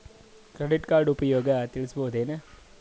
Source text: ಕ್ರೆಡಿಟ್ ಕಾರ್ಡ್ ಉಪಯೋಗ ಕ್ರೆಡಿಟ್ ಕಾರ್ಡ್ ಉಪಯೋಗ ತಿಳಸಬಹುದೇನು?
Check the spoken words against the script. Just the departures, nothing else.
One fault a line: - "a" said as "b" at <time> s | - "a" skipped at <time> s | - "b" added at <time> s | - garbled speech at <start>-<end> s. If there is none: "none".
- "ಕ್ರೆಡಿಟ್ ಕಾರ್ಡ್ ಉಪಯೋಗ" skipped at 1.5 s